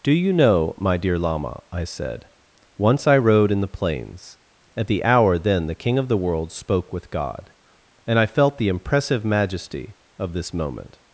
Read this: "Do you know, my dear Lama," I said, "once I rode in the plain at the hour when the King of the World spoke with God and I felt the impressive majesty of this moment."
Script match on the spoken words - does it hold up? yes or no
no